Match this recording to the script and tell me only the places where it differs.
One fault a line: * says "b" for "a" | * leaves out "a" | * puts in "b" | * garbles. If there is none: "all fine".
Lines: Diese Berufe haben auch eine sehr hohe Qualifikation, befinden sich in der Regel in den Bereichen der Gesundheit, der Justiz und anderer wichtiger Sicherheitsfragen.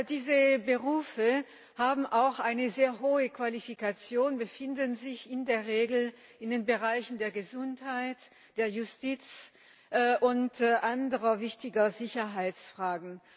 all fine